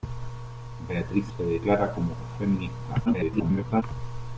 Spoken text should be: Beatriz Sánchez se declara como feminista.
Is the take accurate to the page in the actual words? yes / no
no